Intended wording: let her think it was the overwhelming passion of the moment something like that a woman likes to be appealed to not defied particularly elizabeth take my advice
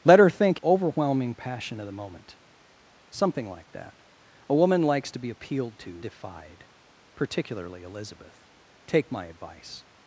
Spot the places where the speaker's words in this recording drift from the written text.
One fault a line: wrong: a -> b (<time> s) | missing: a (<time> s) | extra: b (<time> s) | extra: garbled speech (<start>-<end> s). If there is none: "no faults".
missing: it was the (0.6 s)
missing: not (6.0 s)